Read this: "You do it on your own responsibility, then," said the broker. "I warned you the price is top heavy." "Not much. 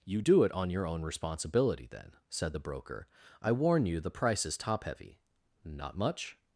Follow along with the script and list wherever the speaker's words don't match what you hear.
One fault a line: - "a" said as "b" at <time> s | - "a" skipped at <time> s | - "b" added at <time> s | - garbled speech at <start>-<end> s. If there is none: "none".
- "warned" said as "warn" at 3.5 s